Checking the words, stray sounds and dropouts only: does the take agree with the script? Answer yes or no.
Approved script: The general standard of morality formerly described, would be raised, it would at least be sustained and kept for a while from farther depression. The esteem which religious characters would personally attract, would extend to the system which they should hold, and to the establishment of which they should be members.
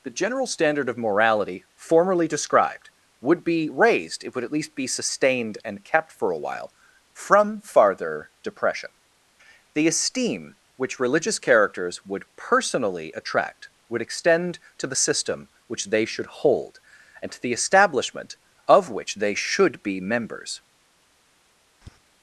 no